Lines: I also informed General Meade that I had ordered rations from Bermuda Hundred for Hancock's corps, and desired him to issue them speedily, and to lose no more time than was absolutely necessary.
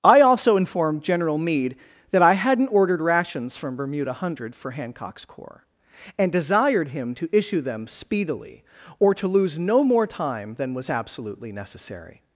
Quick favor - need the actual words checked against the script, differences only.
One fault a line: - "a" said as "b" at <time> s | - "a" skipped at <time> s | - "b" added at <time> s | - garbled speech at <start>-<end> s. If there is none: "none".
- "had" said as "hadn't" at 2.3 s
- "and" said as "or" at 9.0 s